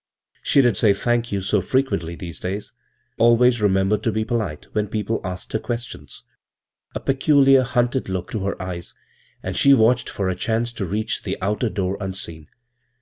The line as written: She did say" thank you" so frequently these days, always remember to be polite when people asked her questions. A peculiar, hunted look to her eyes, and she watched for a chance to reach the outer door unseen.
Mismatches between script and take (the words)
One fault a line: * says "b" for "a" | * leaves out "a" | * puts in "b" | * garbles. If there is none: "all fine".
all fine